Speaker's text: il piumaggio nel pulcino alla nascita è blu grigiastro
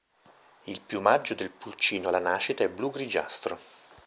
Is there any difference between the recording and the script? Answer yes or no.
yes